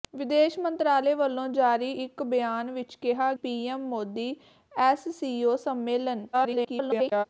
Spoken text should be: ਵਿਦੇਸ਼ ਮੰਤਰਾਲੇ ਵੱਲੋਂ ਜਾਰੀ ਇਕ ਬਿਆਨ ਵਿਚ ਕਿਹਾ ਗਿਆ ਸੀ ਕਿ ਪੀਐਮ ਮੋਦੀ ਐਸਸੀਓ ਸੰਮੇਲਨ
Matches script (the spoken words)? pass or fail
fail